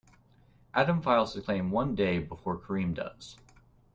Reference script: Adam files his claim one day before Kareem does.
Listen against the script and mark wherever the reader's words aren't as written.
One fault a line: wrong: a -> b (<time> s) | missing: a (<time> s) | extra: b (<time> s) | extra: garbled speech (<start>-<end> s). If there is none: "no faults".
no faults